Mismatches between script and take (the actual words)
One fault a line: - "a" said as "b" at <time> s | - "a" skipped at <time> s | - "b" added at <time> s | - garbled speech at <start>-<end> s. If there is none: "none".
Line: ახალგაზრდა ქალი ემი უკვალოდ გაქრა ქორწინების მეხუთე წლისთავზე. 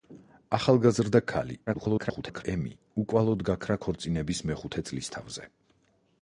- garbled speech at 1.7-2.4 s